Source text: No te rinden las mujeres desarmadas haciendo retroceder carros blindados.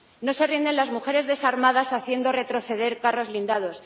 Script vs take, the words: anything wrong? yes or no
yes